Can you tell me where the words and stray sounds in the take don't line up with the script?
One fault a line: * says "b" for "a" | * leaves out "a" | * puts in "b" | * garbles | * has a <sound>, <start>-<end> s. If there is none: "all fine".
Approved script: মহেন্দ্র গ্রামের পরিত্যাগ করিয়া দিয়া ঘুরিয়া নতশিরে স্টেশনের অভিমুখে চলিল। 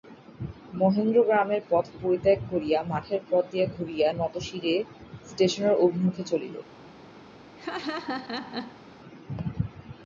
* puts in "পথ"
* puts in "মাঠের পথ"
* has a laugh, 7.6-8.8 s